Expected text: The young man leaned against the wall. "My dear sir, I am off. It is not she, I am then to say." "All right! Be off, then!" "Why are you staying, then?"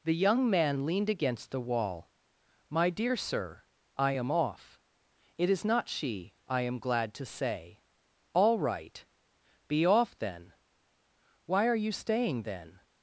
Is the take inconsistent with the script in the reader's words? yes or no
yes